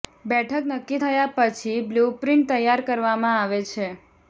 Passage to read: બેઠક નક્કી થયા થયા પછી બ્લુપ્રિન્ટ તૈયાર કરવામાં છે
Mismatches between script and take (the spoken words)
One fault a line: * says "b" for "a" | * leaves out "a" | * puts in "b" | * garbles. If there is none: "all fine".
* leaves out "થયા"
* puts in "આવે"